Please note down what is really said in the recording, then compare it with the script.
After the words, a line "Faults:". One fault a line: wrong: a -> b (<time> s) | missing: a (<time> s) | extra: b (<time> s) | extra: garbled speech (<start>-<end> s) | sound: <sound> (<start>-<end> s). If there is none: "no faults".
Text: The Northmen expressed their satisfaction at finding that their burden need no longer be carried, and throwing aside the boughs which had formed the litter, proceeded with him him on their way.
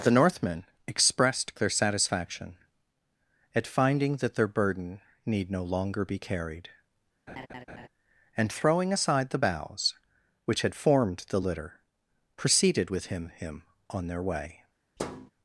The Northmen expressed their satisfaction at finding that their burden need no longer be carried, and throwing aside the boughs which had formed the litter, proceeded with him him on their way.
Faults:
sound: laugh (7.3-7.9 s)
sound: thud (15.0-15.3 s)